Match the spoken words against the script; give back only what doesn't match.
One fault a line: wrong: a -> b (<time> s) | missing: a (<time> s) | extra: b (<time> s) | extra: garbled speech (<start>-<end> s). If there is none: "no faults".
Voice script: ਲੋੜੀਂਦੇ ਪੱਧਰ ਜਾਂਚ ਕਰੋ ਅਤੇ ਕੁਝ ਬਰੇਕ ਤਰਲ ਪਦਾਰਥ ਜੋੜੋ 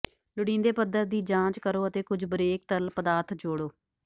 extra: ਦੀ (1.1 s)